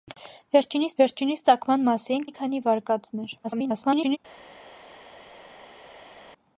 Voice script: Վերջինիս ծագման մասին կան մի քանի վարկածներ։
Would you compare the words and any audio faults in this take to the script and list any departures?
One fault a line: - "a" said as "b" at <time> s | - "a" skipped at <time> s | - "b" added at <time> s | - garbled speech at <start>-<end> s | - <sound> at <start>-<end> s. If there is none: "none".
- "վերջինիս" added at 1.0 s
- "կան" skipped at 2.3 s
- garbled speech at 3.4-4.2 s